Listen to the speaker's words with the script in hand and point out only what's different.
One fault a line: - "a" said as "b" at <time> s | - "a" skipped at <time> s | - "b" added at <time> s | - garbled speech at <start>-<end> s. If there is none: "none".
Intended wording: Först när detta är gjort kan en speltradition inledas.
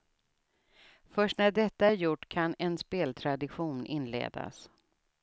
none